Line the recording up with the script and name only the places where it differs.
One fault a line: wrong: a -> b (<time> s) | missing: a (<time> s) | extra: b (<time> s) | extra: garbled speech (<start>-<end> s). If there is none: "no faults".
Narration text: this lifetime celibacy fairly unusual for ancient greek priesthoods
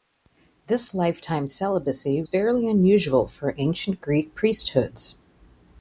no faults